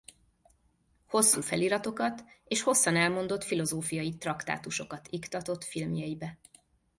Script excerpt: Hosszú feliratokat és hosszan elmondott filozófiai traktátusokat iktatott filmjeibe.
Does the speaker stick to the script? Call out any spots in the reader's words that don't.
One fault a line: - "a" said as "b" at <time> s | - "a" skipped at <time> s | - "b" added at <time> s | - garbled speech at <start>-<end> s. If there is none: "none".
none